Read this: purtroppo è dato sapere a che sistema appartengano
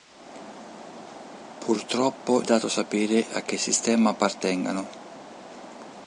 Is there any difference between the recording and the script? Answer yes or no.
no